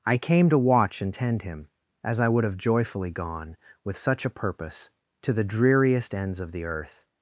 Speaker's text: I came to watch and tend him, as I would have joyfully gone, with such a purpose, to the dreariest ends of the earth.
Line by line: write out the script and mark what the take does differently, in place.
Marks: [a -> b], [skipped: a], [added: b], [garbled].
I came to watch and tend him, as I would have joyfully gone, with such a purpose, to the dreariest ends of the earth.